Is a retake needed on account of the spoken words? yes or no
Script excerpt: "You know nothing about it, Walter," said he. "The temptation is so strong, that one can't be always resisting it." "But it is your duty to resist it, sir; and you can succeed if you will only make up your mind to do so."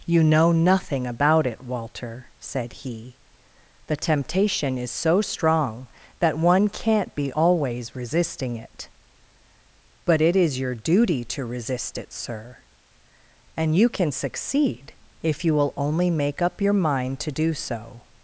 no